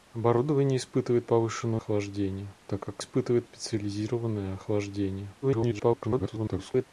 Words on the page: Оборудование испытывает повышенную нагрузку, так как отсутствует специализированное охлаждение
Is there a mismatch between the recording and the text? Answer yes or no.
yes